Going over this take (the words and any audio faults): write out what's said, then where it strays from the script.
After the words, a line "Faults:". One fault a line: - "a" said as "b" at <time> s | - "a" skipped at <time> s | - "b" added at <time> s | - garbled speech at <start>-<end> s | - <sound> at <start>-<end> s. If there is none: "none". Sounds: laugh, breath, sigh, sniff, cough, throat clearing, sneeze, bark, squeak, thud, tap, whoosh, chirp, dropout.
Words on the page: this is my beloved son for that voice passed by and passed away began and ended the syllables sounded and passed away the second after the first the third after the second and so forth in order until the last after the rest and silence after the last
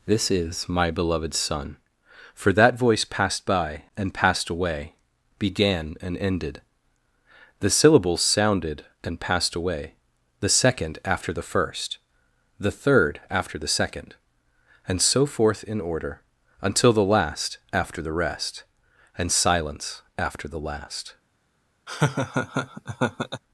this is my beloved son for that voice passed by and passed away began and ended the syllables sounded and passed away the second after the first the third after the second and so forth in order until the last after the rest and silence after the last
Faults:
- laugh at 21.9-23.4 s